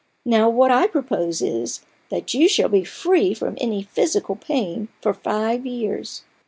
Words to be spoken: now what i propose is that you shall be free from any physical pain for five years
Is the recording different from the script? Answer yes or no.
no